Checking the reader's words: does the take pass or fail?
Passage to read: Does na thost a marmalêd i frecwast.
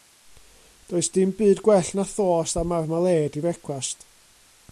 fail